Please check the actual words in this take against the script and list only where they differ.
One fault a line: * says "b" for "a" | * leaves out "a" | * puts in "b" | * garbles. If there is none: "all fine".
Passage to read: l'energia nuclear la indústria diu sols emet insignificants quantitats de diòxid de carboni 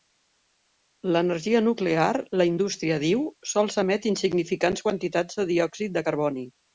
all fine